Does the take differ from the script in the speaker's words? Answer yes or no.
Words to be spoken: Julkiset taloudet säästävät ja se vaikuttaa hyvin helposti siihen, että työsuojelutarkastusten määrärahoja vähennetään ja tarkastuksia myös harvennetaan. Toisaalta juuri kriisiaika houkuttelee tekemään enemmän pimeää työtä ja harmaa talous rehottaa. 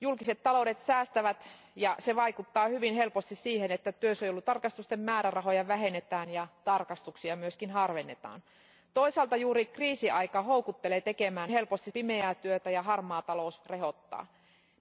yes